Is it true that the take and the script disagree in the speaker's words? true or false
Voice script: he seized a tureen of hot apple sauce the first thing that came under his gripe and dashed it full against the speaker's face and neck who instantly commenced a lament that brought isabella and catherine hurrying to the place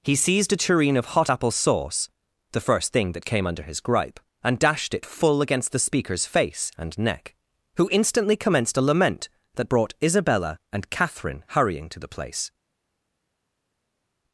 false